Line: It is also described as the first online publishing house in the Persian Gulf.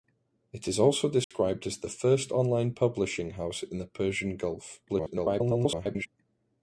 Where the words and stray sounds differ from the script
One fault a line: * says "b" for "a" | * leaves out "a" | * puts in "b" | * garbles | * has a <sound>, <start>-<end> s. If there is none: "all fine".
* has a dropout, 1.2-1.3 s
* garbles